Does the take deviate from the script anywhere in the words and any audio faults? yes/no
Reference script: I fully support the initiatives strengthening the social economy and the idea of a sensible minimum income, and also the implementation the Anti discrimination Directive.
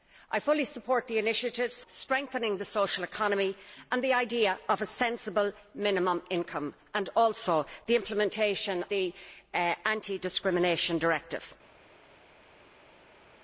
no